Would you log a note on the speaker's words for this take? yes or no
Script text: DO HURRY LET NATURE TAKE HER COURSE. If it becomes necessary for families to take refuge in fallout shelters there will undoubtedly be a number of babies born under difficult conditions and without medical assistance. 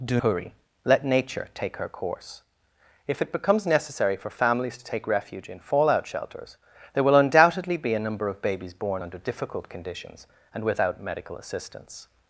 no